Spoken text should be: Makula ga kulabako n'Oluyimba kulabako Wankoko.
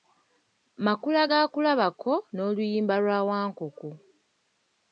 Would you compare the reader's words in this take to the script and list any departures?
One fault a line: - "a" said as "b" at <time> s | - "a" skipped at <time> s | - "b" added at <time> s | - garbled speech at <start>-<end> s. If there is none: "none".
- "kulabako" said as "lwa" at 3.0 s